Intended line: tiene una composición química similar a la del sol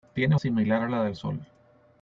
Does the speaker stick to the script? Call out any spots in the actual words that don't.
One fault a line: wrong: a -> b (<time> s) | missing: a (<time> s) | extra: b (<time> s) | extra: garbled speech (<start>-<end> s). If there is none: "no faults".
missing: una composición química (0.3 s)